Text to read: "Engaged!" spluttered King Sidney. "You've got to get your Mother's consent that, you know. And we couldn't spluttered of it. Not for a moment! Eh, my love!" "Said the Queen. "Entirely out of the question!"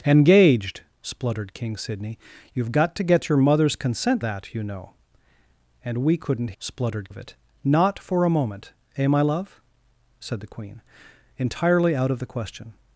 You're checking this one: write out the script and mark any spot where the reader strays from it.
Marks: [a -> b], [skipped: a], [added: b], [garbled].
"Engaged!" spluttered King Sidney. "You've got to get your Mother's consent that, you know. And we couldn't spluttered of it. Not for a moment! Eh, my love!" "Said the Queen. "Entirely out of the question!"